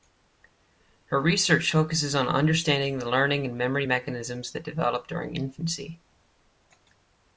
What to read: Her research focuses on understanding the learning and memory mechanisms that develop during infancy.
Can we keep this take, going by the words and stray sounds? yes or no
yes